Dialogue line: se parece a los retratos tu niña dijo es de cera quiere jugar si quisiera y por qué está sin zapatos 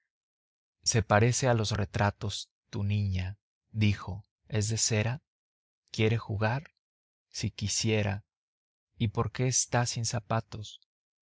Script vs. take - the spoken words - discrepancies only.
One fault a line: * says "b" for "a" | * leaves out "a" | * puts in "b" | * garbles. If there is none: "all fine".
all fine